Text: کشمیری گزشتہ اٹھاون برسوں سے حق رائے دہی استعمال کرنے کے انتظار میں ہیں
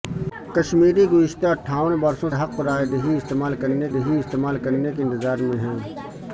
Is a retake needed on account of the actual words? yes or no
yes